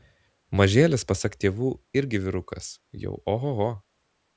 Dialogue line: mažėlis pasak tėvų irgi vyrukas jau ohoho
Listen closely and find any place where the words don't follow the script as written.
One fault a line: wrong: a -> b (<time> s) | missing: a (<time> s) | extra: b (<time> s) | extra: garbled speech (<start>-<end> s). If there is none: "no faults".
no faults